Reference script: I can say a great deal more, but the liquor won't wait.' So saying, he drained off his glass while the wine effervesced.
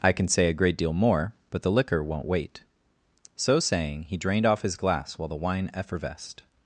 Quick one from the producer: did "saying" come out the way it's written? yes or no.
yes